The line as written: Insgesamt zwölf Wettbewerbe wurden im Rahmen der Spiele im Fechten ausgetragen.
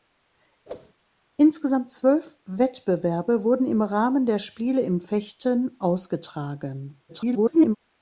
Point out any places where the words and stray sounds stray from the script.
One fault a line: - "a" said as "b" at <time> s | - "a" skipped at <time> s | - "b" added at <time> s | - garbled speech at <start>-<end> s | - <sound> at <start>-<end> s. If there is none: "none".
- whoosh at 0.7-0.9 s
- garbled speech at 7.1-7.8 s